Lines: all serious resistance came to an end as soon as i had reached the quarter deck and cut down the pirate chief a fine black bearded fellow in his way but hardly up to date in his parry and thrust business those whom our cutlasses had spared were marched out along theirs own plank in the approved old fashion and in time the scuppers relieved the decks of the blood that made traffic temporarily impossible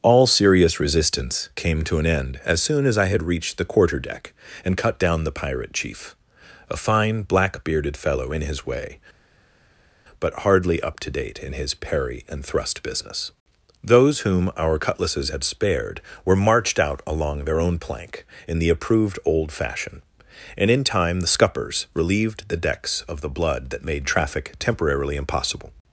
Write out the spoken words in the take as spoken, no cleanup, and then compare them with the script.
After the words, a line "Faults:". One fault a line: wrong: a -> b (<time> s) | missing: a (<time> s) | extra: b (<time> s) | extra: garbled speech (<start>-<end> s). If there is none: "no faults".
all serious resistance came to an end as soon as i had reached the quarter deck and cut down the pirate chief a fine black bearded fellow in his way but hardly up to date in his parry and thrust business those whom our cutlasses had spared were marched out along their own plank in the approved old fashion and in time the scuppers relieved the decks of the blood that made traffic temporarily impossible
Faults:
wrong: theirs -> their (17.4 s)